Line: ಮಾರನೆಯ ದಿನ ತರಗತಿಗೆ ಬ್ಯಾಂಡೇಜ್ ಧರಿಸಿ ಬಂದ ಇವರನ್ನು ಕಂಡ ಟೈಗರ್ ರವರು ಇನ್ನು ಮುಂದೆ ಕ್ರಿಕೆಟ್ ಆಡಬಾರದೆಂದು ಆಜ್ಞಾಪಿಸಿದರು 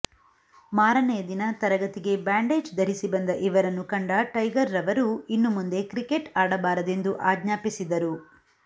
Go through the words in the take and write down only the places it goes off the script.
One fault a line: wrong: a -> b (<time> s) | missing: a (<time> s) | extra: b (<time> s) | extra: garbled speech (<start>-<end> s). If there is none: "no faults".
no faults